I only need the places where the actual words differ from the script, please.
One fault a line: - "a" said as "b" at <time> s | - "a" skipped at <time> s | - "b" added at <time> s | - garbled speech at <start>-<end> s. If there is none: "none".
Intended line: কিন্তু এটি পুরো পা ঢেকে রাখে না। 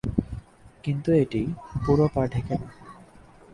- "রাখে" skipped at 2.5 s